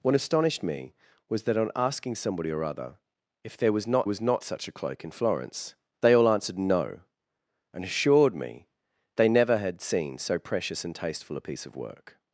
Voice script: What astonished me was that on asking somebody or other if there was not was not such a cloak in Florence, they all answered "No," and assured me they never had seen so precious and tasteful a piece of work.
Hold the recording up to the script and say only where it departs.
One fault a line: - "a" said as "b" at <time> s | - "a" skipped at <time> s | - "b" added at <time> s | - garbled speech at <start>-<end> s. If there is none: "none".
none